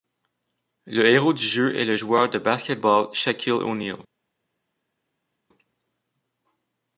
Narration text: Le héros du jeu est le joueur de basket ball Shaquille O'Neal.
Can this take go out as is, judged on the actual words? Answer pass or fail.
pass